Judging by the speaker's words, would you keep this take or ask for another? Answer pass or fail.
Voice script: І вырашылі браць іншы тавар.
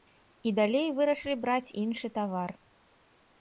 fail